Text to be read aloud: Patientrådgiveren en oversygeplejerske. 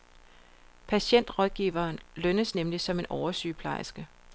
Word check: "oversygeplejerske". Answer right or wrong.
right